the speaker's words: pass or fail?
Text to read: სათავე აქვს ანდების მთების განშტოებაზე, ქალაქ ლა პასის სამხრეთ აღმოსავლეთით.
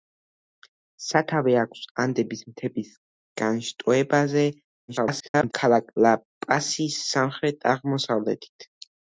fail